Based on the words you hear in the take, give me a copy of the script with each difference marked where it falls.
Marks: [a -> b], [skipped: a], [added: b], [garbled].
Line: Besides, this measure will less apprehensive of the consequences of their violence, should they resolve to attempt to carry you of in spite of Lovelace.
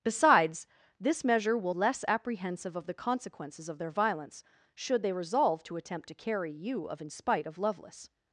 Besides, this measure will less apprehensive of the consequences of their violence, should they resolve to attempt to carry you of in spite of Lovelace.